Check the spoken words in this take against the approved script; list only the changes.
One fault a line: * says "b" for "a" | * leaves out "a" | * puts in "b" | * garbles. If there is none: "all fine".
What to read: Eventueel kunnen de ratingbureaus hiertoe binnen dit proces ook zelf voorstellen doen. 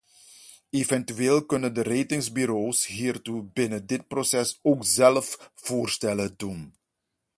all fine